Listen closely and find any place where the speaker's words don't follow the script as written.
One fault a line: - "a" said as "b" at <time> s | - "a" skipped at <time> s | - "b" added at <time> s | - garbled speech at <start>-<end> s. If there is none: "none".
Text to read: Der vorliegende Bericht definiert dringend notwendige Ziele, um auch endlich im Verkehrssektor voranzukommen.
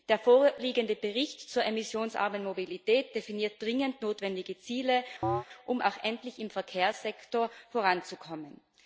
- "zur emissionsarmen Mobilität" added at 1.5 s